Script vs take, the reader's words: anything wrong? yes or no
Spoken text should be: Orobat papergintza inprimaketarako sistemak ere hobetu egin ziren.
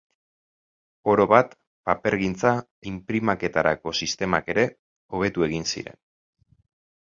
no